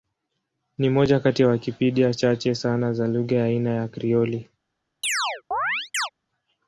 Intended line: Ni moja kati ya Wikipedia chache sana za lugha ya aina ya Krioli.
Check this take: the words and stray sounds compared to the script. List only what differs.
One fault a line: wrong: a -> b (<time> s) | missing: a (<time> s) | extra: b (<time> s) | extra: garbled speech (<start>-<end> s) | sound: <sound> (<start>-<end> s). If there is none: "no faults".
sound: chirp (5.0-6.1 s)